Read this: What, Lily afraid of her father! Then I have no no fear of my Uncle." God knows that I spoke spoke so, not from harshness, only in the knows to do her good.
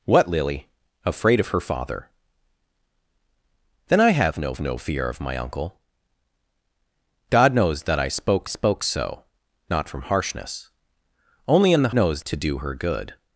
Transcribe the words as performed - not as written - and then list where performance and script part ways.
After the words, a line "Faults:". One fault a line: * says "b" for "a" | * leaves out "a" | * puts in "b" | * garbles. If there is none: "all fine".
What, Lily afraid of her father! Then I have no no fear of my Uncle." God knows that I spoke spoke so, not from harshness, only in the knows to do her good.
Faults:
all fine